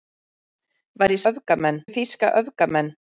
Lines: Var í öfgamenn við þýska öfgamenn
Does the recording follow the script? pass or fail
pass